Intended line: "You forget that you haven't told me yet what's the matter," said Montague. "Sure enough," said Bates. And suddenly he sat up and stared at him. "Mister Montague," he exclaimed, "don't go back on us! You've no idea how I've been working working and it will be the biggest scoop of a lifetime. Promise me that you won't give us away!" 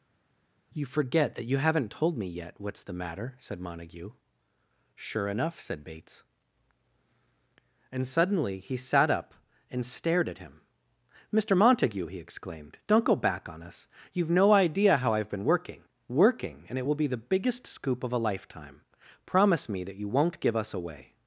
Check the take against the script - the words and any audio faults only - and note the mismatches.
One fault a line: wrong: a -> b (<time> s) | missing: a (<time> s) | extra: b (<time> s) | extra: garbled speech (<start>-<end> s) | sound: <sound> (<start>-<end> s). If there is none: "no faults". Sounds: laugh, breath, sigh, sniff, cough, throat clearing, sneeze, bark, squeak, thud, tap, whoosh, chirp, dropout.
no faults